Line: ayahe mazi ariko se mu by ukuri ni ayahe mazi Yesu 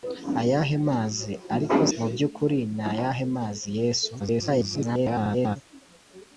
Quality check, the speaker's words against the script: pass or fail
fail